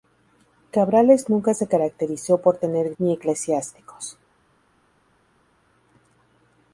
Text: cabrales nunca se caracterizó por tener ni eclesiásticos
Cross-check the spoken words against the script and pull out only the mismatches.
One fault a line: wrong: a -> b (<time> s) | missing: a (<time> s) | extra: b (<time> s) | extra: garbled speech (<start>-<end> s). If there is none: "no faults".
no faults